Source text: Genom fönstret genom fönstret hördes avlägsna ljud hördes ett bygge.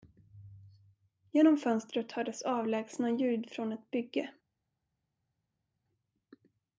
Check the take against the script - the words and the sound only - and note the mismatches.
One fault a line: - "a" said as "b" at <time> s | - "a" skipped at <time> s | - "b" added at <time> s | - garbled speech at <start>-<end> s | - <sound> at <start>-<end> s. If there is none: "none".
- "genom fönstret" skipped at 2.1 s
- "hördes" said as "från" at 3.5 s